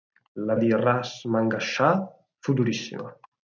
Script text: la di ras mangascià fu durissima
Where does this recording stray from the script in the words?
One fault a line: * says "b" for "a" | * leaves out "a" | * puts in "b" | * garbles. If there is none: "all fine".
all fine